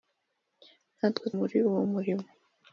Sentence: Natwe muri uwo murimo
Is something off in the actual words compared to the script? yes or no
no